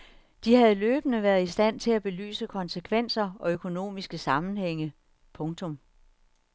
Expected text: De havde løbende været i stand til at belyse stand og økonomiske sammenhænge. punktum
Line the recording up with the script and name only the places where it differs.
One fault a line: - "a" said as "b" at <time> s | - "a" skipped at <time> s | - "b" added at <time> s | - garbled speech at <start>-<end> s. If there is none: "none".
- "stand" said as "konsekvenser" at 2.5 s